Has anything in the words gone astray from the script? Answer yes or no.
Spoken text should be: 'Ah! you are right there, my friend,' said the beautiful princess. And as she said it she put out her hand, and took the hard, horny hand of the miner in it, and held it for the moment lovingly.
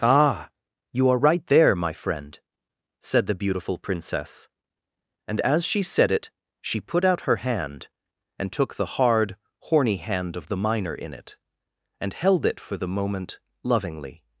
no